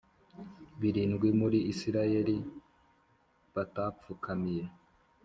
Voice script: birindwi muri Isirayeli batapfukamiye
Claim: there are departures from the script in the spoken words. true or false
false